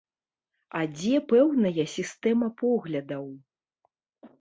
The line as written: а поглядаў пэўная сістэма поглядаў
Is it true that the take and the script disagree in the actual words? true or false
true